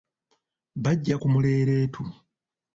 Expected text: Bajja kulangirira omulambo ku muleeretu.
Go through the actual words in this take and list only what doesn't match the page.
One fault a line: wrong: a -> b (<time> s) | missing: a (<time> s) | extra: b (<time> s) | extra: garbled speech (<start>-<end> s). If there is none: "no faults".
missing: kulangirira omulambo (1.1 s)